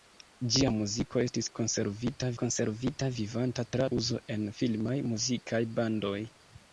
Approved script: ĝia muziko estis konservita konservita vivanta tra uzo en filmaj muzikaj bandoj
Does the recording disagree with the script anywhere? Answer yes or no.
no